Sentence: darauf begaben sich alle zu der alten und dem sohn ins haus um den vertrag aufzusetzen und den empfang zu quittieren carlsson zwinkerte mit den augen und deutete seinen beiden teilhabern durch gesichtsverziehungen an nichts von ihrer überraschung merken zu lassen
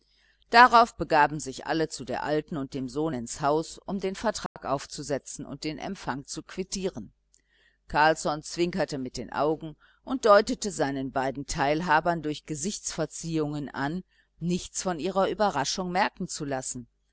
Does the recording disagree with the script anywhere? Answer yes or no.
no